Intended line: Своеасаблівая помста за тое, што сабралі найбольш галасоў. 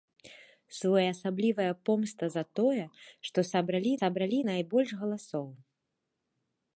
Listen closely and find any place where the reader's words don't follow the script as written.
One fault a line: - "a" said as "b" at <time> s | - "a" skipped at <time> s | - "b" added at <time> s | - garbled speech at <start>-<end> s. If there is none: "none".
- "сабралі" added at 4.0 s